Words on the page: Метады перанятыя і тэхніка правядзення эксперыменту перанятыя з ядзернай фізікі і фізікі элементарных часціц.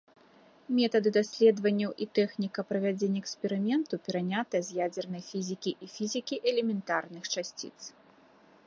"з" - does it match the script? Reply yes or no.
yes